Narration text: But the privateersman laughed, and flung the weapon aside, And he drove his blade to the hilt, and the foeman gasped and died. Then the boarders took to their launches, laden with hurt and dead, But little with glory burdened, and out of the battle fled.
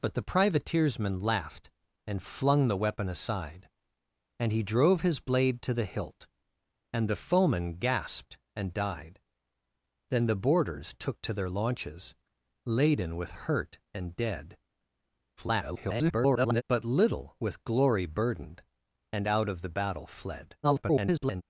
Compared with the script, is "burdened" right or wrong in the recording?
right